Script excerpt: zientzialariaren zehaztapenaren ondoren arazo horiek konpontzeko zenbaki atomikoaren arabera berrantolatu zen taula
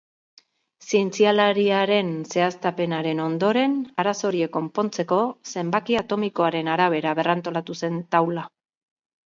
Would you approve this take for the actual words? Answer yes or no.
yes